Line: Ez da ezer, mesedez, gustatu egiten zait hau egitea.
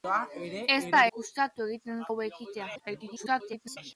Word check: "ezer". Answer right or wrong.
wrong